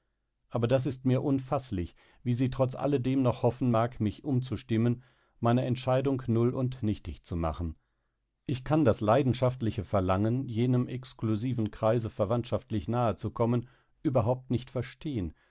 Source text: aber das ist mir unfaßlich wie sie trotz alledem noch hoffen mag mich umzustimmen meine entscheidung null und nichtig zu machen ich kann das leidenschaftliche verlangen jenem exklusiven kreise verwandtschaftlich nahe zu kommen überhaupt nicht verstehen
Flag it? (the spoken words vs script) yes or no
no